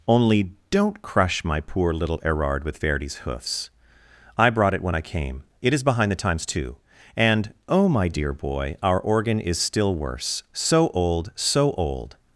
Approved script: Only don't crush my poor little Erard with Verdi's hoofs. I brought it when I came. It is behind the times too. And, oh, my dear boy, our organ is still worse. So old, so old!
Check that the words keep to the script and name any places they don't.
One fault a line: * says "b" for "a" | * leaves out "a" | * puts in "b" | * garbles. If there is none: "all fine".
all fine